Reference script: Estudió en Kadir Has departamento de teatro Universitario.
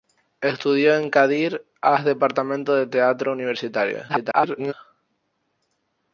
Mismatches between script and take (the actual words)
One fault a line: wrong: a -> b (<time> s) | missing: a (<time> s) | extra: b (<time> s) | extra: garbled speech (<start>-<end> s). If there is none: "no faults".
extra: garbled speech (4.1-4.7 s)